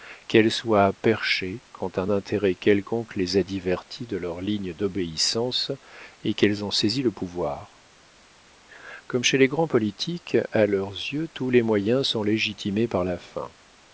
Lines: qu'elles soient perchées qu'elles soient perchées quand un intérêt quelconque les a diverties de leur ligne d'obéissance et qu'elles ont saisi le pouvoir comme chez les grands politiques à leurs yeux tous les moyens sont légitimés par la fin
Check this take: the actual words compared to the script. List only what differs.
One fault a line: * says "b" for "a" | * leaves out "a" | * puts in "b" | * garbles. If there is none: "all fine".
* leaves out "qu'elles soient perchées"